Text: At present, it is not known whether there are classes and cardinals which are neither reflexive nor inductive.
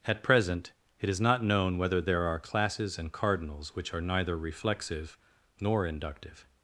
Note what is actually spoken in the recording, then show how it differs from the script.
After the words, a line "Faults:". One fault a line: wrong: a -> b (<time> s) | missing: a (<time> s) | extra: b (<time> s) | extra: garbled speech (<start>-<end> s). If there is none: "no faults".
At present, it is not known whether there are classes and cardinals which are neither reflexive nor inductive.
Faults:
no faults